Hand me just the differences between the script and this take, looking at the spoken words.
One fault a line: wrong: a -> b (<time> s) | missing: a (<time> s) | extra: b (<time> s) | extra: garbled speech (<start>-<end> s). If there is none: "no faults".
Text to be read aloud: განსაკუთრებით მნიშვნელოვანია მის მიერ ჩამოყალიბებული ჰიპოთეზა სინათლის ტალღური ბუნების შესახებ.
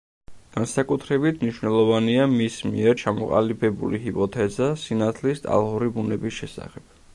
no faults